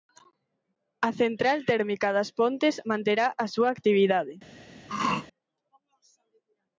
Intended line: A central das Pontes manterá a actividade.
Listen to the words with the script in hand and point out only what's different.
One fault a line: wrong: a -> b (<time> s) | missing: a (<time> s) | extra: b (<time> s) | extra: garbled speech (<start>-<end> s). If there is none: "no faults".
extra: térmica (1.7 s)
extra: súa (3.5 s)